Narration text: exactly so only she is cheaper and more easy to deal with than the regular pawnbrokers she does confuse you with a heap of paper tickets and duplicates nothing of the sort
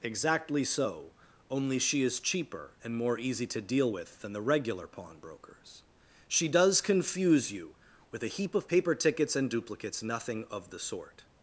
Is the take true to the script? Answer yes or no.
yes